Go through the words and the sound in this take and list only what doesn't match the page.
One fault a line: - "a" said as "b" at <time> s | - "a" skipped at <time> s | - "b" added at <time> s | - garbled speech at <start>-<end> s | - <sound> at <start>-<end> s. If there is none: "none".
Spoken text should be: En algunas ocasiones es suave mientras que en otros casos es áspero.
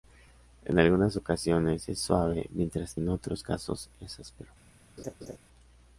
- "que" skipped at 3.0 s
- laugh at 5.0-5.4 s